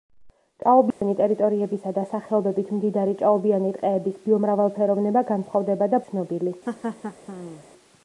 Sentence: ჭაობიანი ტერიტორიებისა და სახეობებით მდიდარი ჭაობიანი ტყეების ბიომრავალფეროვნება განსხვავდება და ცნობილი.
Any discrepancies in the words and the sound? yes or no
yes